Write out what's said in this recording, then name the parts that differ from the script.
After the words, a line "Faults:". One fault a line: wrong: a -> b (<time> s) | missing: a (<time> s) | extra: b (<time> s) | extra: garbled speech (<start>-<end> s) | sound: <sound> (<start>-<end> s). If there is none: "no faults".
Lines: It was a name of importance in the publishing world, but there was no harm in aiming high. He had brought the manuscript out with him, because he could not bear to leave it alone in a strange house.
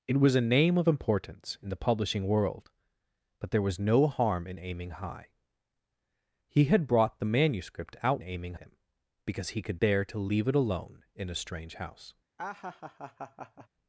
It was a name of importance in the publishing world, but there was no harm in aiming high. He had brought the manuscript out aiming him, because he could bear to leave it alone in a strange house.
Faults:
wrong: with -> aiming (8.2 s)
missing: not (9.8 s)
sound: laugh (12.4-13.7 s)